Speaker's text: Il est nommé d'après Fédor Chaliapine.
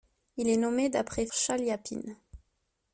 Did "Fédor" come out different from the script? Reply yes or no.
yes